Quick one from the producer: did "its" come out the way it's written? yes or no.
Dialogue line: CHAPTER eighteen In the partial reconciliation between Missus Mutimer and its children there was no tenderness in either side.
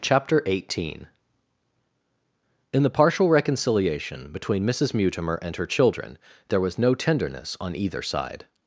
no